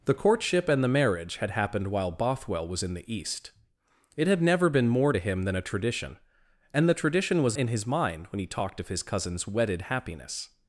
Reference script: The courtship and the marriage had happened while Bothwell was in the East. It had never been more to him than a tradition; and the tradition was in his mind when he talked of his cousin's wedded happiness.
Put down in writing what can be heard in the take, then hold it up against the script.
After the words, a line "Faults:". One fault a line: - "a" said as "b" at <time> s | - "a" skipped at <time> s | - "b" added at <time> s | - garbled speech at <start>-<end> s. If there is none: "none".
The courtship and the marriage had happened while Bothwell was in the East. It had never been more to him than a tradition; and the tradition was in his mind when he talked of his cousin's wedded happiness.
Faults:
none